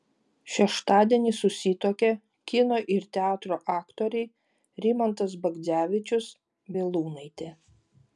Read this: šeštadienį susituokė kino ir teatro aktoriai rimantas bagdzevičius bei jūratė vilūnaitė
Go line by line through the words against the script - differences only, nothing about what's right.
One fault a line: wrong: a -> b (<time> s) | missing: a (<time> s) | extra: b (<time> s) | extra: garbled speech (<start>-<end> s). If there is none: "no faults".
missing: bei jūratė (6.3 s)